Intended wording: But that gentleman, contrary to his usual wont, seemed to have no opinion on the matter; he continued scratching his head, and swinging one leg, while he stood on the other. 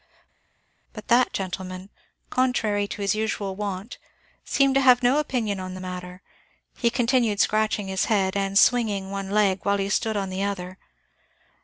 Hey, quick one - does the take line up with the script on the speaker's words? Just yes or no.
yes